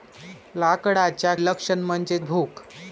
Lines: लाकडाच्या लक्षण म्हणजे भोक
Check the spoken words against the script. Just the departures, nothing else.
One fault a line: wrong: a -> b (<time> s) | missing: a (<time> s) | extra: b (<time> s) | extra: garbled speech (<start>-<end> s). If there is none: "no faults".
no faults